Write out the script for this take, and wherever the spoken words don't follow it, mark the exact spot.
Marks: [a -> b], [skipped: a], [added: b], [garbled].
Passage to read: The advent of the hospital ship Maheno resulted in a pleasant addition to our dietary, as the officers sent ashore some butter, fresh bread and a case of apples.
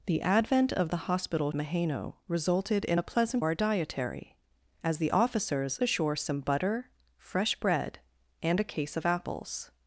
The advent of the hospital [skipped: ship] Maheno resulted in a pleasant [skipped: addition to] our dietary, as the officers [skipped: sent] ashore some butter, fresh bread and a case of apples.